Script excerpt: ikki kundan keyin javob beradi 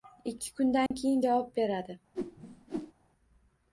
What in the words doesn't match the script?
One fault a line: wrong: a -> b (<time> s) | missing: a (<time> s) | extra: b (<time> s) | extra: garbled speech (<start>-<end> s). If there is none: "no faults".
no faults